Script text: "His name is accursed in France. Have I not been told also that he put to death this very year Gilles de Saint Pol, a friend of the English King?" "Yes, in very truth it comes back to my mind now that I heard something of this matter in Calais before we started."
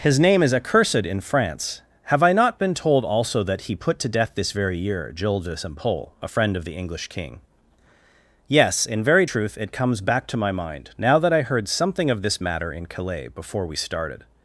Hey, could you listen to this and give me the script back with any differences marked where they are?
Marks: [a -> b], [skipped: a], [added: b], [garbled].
"His name is accursed in France. Have I not been told also that he put to death this very year Gilles de Saint Pol, a friend of the English King?" "Yes, in very truth it comes back to my mind now that I heard something of this matter in Calais before we started."